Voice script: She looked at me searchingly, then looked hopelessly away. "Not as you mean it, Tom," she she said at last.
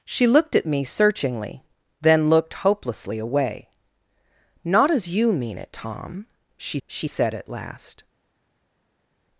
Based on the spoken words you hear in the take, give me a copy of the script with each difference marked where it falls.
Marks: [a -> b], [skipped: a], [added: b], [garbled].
She looked at me searchingly, then looked hopelessly away. "Not as you mean it, Tom," she she said at last.